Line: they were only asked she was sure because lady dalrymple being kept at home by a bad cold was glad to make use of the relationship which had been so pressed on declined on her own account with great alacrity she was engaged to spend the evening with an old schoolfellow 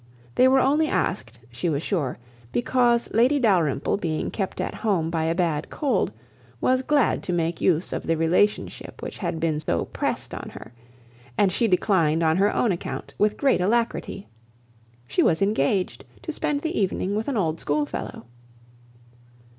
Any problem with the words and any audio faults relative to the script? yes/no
yes